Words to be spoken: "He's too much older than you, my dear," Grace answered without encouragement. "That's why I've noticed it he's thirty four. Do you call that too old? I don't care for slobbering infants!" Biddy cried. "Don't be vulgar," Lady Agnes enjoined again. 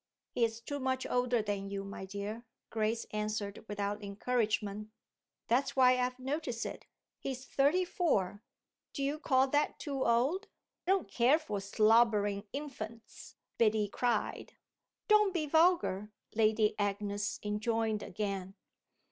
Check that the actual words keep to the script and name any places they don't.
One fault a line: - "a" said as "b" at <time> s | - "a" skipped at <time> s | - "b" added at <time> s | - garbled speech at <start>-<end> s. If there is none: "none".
- "I" skipped at 10.5 s